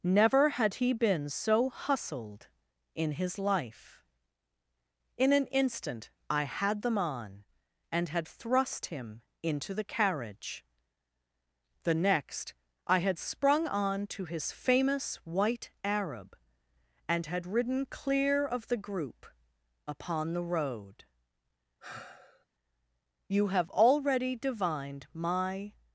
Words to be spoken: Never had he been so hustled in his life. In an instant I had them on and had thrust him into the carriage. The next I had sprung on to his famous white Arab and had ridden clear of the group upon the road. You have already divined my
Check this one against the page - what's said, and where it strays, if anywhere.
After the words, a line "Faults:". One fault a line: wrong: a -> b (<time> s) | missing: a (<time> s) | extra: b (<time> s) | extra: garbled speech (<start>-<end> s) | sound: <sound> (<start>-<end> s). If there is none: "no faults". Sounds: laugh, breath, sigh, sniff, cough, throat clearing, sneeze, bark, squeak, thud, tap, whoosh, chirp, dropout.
Never had he been so hustled in his life. In an instant I had them on and had thrust him into the carriage. The next I had sprung on to his famous white Arab and had ridden clear of the group upon the road. You have already divined my
Faults:
sound: sigh (21.8-22.5 s)